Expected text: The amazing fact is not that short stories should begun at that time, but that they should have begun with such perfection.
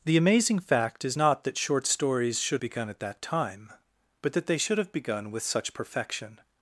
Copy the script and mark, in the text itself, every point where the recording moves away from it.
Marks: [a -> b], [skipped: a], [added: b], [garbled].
The amazing fact is not that short stories should begun at that time, but that they should have begun with such perfection.